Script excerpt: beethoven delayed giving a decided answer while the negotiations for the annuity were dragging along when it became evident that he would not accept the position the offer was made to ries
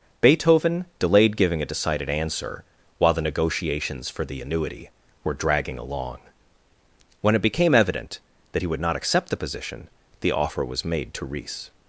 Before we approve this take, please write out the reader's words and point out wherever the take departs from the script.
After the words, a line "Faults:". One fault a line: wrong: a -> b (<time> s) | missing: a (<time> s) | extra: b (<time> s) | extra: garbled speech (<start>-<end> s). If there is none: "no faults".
beethoven delayed giving a decided answer while the negotiations for the annuity were dragging along when it became evident that he would not accept the position the offer was made to ries
Faults:
no faults